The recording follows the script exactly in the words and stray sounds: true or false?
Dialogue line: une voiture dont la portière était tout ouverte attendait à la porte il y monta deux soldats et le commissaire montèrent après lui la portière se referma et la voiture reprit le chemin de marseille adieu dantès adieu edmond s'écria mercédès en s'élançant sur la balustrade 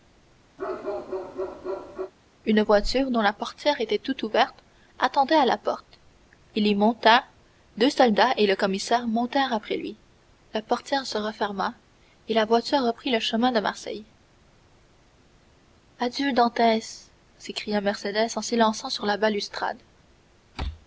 false